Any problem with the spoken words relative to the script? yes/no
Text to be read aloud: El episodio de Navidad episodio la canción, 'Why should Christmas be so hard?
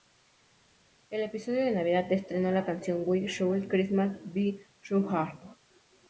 yes